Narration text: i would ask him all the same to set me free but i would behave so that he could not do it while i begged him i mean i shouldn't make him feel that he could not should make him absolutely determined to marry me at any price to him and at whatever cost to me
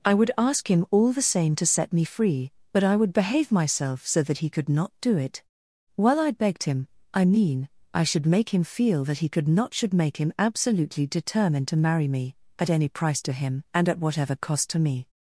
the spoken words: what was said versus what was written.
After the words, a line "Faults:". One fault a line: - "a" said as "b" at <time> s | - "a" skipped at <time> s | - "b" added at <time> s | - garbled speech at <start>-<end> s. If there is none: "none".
i would ask him all the same to set me free but i would behave myself so that he could not do it while i begged him i mean i should make him feel that he could not should make him absolutely determined to marry me at any price to him and at whatever cost to me
Faults:
- "myself" added at 3.5 s
- "shouldn't" said as "should" at 8.0 s